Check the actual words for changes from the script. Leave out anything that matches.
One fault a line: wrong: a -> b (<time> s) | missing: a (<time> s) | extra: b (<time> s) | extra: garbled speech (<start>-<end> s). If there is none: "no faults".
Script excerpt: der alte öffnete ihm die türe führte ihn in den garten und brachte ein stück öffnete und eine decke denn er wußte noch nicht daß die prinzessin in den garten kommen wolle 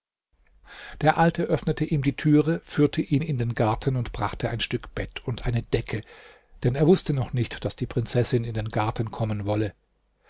wrong: öffnete -> bett (4.9 s)